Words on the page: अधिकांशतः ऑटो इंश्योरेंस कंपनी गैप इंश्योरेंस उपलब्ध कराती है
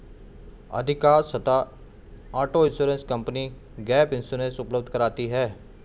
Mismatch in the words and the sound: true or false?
false